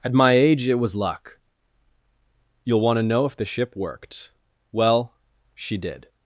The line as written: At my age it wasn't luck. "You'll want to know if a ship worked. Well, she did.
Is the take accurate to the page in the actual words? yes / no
no